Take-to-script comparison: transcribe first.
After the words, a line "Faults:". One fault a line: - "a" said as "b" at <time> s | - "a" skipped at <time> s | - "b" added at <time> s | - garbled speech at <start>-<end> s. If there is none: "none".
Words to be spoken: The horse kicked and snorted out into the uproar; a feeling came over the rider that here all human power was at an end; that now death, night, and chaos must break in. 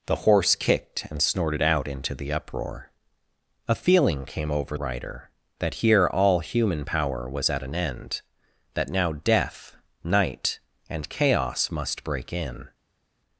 The horse kicked and snorted out into the uproar; a feeling came over rider that here all human power was at an end; that now death, night, and chaos must break in.
Faults:
- "the" skipped at 4.8 s